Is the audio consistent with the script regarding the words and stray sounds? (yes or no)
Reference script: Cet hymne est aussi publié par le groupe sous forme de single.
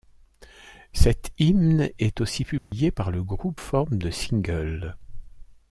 no